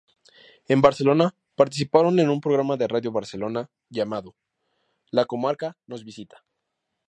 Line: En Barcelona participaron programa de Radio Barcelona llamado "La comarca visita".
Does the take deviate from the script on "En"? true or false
false